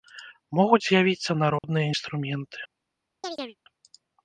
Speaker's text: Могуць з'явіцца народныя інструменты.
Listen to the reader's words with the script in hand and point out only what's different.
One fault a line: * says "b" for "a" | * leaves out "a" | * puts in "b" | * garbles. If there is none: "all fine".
all fine